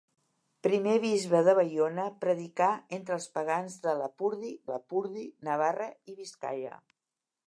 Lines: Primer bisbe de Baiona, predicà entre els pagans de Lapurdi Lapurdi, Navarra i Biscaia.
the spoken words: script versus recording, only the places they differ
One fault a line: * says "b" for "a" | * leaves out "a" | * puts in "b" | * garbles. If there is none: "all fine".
all fine